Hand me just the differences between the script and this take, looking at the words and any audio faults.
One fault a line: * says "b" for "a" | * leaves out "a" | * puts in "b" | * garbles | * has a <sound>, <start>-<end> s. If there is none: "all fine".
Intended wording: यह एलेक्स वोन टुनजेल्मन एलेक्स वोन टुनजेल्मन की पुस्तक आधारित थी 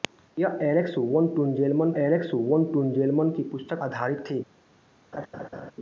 * has a laugh, 5.1-5.7 s